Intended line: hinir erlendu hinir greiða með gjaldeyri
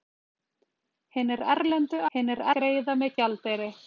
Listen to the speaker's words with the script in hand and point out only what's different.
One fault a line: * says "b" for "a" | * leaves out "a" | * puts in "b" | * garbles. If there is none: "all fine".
all fine